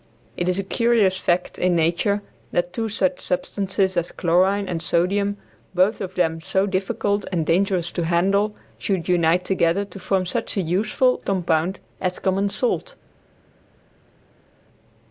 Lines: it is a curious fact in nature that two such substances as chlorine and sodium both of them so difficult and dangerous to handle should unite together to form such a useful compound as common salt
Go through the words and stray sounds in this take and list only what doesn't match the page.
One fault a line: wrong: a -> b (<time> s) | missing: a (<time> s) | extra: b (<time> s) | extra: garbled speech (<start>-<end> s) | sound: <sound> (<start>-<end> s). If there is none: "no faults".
no faults